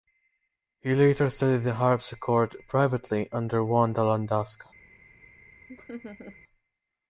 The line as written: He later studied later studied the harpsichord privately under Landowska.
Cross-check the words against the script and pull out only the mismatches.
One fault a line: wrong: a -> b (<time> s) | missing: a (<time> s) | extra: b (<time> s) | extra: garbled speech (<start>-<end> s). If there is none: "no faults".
missing: later studied (1.6 s)
extra: Wanda (3.6 s)